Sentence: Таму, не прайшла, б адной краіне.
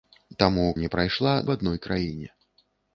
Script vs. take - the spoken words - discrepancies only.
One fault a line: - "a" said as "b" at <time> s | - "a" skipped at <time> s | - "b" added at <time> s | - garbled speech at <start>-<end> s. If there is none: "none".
none